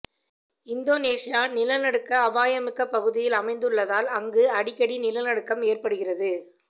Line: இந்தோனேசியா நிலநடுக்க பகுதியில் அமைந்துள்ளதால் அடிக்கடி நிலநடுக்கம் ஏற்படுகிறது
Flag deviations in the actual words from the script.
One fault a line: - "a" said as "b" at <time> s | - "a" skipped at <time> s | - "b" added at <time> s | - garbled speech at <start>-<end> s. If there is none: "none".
- "அபாயமிக்க" added at 2.2 s
- "அங்கு" added at 4.2 s